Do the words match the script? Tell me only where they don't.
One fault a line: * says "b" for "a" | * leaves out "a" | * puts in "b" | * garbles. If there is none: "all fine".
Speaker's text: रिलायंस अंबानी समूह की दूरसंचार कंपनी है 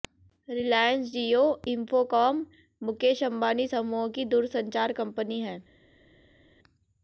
* puts in "जियो इंफोकॉम मुकेश"